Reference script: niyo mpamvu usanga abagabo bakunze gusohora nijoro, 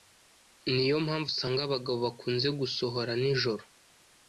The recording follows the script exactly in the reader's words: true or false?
true